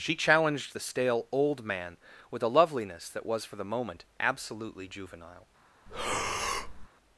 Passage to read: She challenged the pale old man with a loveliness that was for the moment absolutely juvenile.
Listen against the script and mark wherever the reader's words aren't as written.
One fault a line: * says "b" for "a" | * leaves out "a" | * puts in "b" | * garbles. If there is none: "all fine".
* says "stale" for "pale"